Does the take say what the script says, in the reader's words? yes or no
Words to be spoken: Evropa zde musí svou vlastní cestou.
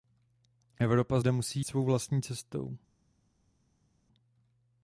yes